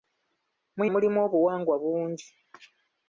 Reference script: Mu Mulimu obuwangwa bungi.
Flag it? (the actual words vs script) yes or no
no